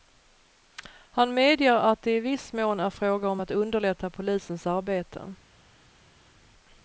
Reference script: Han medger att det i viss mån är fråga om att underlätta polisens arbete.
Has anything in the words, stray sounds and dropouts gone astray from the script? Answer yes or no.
no